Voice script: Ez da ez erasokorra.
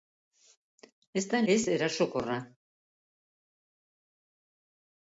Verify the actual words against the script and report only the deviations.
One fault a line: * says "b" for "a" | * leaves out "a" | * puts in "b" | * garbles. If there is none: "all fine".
all fine